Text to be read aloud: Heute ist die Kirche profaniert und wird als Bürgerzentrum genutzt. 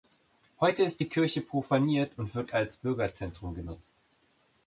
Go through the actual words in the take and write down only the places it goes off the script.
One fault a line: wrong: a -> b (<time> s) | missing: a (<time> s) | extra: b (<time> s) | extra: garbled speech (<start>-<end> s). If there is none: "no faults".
no faults